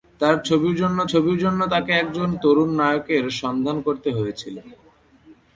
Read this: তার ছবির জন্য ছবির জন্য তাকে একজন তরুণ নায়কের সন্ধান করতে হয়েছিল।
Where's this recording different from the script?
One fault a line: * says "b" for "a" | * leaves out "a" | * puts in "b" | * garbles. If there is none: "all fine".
all fine